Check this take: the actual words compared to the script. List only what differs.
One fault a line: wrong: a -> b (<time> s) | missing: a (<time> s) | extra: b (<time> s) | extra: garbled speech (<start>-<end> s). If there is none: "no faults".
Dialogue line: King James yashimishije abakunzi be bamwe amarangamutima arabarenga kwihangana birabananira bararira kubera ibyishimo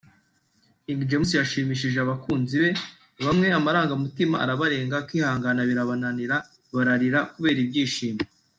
no faults